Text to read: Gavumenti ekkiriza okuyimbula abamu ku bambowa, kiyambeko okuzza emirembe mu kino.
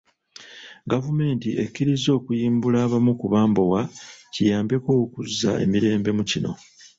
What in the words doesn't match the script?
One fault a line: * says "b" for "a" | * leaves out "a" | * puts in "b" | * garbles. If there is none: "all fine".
all fine